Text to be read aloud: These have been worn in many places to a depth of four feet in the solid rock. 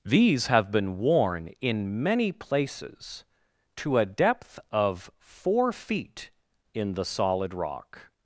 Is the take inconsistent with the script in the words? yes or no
no